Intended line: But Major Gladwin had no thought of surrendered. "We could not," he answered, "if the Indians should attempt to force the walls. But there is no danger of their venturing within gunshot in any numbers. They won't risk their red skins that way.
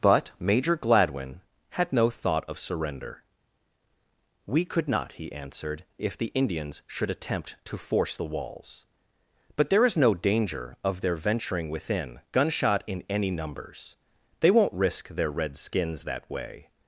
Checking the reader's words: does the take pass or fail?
fail